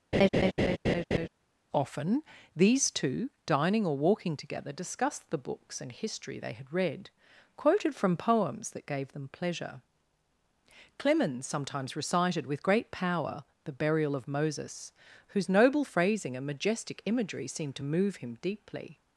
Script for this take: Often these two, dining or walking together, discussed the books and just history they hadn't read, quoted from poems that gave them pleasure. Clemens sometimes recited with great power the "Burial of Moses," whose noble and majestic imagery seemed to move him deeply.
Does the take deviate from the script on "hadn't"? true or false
true